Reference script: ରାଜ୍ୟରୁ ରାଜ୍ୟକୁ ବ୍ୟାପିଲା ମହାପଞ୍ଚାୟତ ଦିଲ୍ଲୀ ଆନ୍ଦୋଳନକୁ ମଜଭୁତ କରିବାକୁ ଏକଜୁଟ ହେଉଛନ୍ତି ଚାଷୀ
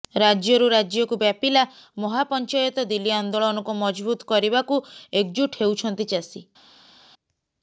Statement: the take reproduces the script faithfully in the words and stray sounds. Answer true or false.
true